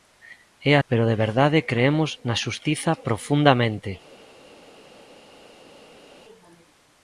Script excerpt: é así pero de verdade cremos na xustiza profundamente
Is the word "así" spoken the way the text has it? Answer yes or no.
no